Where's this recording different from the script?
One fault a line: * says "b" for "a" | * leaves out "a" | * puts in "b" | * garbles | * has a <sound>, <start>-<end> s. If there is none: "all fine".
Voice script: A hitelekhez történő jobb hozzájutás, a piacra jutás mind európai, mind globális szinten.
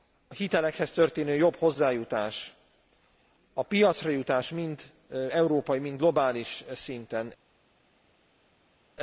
all fine